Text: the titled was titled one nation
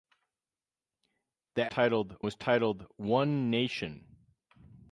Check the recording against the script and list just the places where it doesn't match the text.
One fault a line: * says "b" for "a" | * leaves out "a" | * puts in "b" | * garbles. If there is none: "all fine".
all fine